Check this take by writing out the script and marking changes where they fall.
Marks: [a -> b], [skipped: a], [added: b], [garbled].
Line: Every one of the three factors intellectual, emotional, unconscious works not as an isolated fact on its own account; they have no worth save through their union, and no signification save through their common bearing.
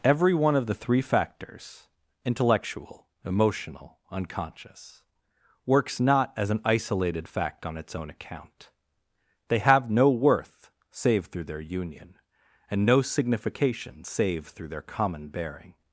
Every one of the three factors intellectual, emotional, unconscious works not as an isolated fact on its own account; they have no worth save through their union, and no signification save through their common bearing.